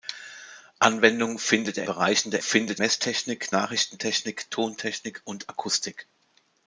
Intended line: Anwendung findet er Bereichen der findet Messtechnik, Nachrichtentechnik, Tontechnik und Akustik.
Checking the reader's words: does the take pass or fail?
pass